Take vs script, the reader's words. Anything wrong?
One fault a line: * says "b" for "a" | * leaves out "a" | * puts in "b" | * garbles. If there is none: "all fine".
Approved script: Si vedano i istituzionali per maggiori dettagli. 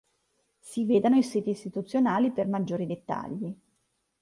* puts in "siti"